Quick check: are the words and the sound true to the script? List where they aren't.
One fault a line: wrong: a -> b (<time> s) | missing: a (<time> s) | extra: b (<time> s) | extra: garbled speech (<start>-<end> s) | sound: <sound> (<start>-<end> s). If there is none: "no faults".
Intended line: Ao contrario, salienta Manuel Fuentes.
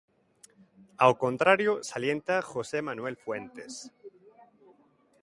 extra: José (2.4 s)